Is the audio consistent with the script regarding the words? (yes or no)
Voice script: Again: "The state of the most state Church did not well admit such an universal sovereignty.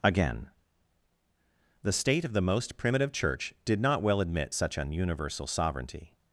no